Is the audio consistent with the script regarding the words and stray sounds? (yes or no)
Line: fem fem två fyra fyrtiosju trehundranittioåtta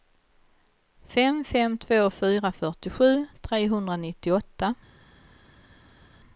yes